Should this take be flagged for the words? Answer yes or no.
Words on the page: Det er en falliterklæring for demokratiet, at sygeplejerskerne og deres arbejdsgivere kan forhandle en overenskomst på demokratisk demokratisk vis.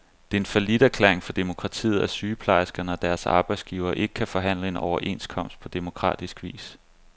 yes